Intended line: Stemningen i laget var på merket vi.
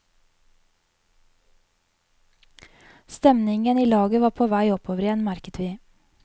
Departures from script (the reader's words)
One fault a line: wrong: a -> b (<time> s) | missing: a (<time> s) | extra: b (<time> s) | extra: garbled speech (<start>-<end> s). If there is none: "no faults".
extra: vei oppover igjen (4.5 s)